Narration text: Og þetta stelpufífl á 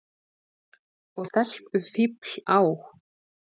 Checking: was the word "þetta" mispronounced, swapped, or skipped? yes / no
yes